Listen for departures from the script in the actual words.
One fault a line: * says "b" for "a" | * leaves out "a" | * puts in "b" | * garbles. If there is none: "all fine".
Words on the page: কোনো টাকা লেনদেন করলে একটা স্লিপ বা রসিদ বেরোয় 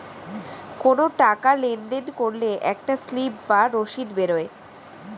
all fine